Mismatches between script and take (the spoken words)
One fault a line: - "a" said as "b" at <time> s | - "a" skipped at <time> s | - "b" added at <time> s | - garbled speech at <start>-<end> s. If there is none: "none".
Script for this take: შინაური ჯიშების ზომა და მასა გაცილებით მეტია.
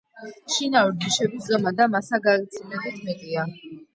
none